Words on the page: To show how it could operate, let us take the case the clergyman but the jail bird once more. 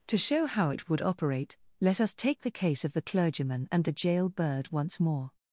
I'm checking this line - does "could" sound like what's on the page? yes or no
no